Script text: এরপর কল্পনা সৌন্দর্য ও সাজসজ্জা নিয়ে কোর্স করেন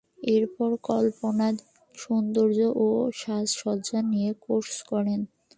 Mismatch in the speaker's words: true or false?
false